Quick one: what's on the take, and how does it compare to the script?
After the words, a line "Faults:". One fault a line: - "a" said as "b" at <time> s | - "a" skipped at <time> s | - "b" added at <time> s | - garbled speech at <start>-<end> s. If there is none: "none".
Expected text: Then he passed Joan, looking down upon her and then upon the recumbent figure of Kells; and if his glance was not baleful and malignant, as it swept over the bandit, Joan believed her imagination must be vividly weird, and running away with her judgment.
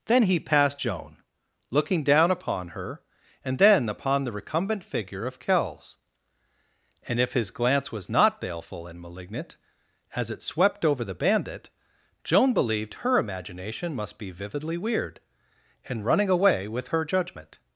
Then he passed Joan, looking down upon her and then upon the recumbent figure of Kells; and if his glance was not baleful and malignant, as it swept over the bandit, Joan believed her imagination must be vividly weird, and running away with her judgment.
Faults:
none